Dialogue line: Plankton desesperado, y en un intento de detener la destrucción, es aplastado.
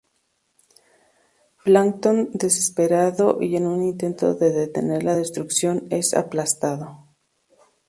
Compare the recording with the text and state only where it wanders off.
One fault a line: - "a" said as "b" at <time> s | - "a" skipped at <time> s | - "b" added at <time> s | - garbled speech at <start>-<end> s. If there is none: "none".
none